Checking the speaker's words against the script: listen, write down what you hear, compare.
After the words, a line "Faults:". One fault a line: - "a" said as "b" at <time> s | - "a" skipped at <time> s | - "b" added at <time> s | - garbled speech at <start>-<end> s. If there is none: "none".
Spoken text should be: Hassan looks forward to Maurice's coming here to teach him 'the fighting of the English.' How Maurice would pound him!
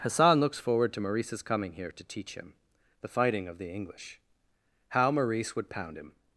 Hassan looks forward to Maurice's coming here to teach him 'the fighting of the English.' How Maurice would pound him!
Faults:
none